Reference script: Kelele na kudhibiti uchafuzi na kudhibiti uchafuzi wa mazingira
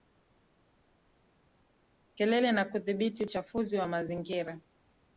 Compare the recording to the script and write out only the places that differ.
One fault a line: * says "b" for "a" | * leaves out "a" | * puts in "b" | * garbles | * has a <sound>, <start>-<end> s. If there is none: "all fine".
* leaves out "na kudhibiti uchafuzi"